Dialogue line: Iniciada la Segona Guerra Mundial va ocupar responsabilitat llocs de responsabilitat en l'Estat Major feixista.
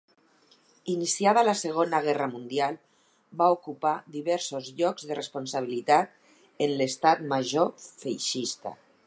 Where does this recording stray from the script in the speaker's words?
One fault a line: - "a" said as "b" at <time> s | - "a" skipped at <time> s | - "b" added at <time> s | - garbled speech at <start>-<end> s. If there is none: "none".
- "responsabilitat" said as "diversos" at 4.2 s